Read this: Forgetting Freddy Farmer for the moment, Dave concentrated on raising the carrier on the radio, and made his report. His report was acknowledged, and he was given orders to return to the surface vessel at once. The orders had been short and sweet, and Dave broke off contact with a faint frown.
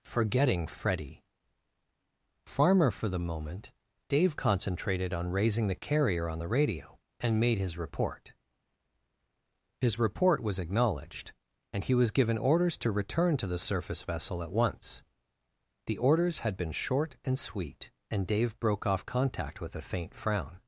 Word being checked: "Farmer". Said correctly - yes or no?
yes